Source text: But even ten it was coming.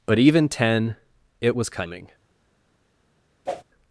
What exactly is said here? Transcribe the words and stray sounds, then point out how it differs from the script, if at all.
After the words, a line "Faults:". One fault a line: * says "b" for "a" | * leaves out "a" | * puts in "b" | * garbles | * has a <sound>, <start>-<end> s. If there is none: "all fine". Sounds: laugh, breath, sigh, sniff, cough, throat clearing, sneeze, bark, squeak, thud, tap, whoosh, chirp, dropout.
But even ten it was coming.
Faults:
* has a whoosh, 3.5-3.6 s